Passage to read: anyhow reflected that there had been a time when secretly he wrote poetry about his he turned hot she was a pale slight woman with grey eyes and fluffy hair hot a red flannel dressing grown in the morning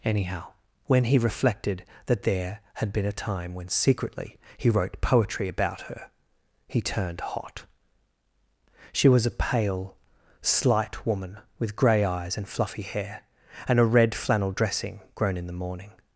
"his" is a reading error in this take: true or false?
true